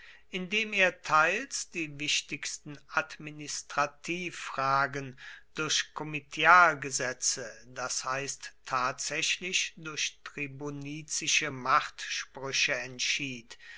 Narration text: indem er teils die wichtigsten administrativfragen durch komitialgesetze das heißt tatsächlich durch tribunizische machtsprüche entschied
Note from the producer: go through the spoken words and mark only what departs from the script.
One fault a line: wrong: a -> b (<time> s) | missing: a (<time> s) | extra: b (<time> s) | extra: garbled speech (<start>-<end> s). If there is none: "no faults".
no faults